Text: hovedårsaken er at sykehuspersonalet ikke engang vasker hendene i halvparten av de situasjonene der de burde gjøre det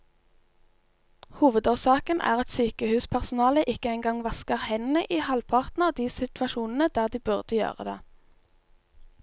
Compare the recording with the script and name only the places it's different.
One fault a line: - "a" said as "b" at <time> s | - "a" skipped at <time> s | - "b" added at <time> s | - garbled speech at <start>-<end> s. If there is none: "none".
none